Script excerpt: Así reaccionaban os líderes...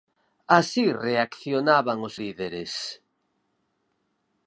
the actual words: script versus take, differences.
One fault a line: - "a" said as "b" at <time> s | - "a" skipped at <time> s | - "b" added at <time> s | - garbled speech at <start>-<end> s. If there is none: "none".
none